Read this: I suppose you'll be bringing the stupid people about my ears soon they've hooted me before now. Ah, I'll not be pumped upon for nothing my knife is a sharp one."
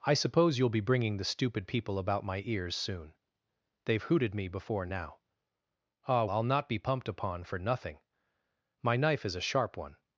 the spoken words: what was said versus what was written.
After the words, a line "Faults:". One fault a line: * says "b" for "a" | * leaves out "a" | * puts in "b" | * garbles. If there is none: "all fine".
I suppose you'll be bringing the stupid people about my ears soon they've hooted me before now. Ah, I'll not be pumped upon for nothing my knife is a sharp one."
Faults:
all fine